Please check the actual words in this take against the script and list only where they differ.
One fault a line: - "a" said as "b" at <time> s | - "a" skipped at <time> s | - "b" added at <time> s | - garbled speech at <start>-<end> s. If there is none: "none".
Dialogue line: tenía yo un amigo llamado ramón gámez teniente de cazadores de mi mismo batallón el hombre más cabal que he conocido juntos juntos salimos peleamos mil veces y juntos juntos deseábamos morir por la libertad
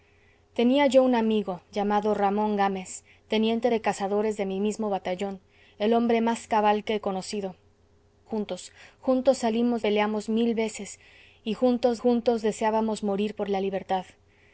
none